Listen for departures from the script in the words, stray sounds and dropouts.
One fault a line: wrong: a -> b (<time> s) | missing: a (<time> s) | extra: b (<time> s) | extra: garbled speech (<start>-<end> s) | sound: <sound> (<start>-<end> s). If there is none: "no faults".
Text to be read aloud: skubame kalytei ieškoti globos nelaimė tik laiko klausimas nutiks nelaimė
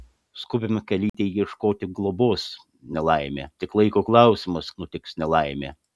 sound: dropout (1.1-1.1 s)